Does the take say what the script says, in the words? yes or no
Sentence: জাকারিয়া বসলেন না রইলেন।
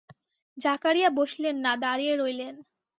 no